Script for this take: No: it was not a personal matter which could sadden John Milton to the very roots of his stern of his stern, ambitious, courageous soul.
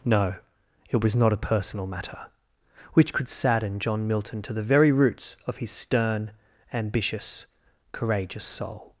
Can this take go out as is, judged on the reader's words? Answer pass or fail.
fail